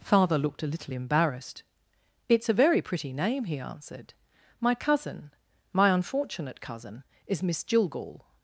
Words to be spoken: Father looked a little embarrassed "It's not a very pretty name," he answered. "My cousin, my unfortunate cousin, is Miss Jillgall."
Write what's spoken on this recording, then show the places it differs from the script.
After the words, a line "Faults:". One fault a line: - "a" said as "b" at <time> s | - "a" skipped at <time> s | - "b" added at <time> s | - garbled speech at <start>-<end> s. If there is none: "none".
Father looked a little embarrassed "It's a very pretty name," he answered. "My cousin, my unfortunate cousin, is Miss Jillgall."
Faults:
- "not" skipped at 2.5 s